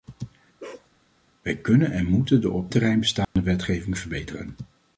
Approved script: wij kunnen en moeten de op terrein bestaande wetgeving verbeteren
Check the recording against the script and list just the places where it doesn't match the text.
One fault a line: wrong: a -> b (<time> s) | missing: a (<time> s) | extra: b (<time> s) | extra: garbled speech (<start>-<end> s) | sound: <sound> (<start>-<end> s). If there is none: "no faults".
sound: bark (0.6-0.9 s)
sound: dropout (3.2-3.4 s)